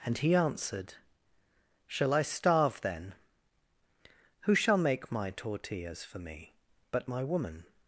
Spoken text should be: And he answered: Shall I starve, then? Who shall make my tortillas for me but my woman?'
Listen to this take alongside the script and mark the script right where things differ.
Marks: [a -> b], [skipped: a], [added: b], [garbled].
And he answered: Shall I starve, then? Who shall make my tortillas for me but my woman?'